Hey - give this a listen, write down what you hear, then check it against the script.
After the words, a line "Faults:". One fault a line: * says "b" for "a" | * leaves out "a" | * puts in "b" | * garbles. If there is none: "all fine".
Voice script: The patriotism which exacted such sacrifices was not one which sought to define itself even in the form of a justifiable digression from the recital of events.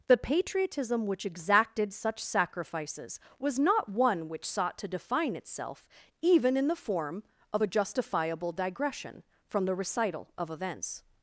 The patriotism which exacted such sacrifices was not one which sought to define itself even in the form of a justifiable digression from the recital of events.
Faults:
all fine